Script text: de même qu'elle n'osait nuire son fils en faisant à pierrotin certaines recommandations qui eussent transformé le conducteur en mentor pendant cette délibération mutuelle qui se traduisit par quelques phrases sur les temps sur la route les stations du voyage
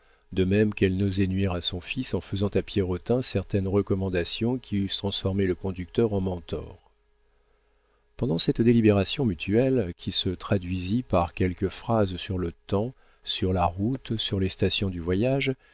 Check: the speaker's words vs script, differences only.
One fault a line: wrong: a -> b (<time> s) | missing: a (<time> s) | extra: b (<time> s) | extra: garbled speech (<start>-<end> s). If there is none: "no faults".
extra: à (1.5 s)
wrong: les -> le (12.4 s)
extra: sur (14.2 s)